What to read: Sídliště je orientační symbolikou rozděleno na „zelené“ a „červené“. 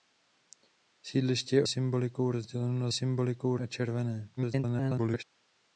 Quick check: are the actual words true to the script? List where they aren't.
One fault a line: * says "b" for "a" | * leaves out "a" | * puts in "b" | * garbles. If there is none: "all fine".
* leaves out "orientační"
* says "symbolikou" for "zelené"
* garbles